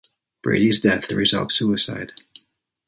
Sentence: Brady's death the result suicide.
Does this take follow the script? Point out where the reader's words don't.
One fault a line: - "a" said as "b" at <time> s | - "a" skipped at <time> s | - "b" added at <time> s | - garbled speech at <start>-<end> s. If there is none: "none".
none